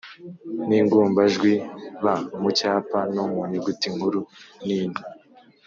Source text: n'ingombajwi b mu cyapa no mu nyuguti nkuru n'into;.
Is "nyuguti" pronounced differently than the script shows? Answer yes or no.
no